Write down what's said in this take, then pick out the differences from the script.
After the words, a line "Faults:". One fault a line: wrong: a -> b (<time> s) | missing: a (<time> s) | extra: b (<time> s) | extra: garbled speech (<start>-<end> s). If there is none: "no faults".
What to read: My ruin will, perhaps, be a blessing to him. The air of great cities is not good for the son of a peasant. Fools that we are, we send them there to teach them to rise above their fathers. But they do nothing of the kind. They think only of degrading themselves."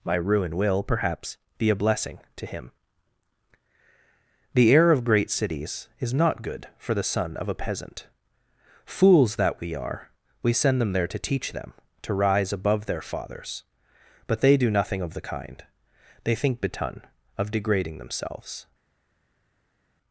My ruin will, perhaps, be a blessing to him. The air of great cities is not good for the son of a peasant. Fools that we are, we send them there to teach them to rise above their fathers. But they do nothing of the kind. They think betun of degrading themselves."
Faults:
wrong: only -> betun (16.6 s)